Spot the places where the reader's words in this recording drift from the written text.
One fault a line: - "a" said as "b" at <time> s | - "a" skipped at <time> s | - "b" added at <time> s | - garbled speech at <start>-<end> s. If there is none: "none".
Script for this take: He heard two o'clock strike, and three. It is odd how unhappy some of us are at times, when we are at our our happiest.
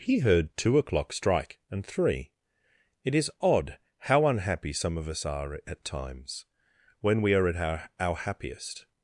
none